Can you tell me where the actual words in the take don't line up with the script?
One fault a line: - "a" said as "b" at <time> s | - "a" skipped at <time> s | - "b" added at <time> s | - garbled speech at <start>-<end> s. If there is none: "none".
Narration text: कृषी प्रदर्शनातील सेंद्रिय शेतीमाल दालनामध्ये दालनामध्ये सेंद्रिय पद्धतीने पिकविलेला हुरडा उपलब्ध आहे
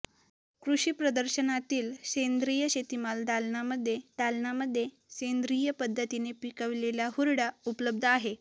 none